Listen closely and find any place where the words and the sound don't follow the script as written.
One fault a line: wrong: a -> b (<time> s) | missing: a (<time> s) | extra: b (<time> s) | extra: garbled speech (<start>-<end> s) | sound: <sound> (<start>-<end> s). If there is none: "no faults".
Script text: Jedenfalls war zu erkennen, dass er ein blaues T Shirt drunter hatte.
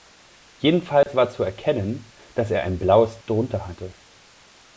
sound: dropout (1.0-1.1 s)
missing: T Shirt (3.2 s)